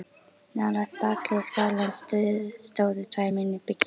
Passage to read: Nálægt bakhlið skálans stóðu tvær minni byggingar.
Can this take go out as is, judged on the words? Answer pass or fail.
pass